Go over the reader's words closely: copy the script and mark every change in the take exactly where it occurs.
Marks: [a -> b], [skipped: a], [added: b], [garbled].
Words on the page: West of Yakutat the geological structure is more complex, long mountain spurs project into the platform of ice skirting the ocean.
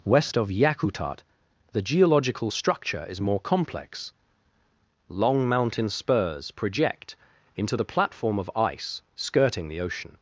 West of Yakutat the geological structure is more complex, long mountain spurs project into the platform of ice skirting the ocean.